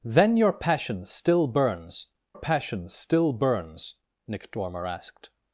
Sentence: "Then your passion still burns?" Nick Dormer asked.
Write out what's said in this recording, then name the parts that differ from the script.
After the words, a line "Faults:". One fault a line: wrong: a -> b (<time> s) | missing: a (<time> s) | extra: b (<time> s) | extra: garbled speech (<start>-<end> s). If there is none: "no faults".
"Then your passion still burns passion still burns?" Nick Dormer asked.
Faults:
extra: passion still burns (2.3 s)